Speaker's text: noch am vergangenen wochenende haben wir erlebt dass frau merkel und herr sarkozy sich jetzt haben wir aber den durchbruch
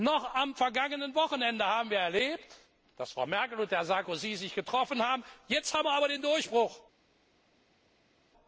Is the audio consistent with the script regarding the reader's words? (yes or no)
no